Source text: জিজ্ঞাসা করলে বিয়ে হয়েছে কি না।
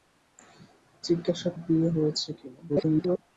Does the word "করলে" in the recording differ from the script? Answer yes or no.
yes